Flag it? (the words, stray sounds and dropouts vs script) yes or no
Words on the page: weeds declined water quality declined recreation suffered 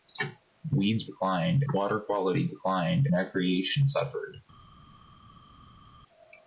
no